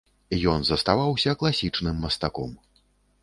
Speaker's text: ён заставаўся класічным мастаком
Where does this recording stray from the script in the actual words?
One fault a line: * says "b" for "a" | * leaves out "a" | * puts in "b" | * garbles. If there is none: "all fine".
all fine